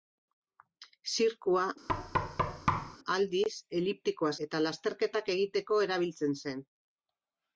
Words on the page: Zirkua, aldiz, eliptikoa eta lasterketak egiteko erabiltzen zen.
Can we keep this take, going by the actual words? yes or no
yes